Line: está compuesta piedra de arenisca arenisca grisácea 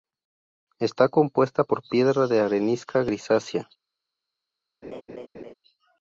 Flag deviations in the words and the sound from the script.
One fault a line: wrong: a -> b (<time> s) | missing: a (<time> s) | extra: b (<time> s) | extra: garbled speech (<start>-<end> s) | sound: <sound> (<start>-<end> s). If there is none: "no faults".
extra: por (1.6 s)
missing: arenisca (3.0 s)
sound: laugh (4.8-5.5 s)